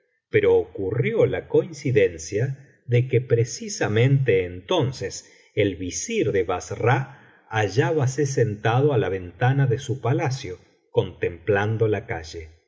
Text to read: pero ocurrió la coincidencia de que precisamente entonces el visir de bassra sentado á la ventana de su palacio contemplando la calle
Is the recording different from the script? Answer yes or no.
yes